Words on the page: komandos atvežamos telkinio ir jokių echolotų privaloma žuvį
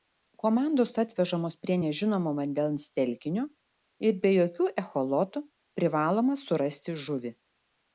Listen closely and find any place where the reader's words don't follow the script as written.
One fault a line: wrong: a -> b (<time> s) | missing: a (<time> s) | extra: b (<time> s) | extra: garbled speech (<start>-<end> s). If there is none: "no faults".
extra: prie nežinomo vandens (1.6 s)
extra: be (4.3 s)
extra: surasti (6.5 s)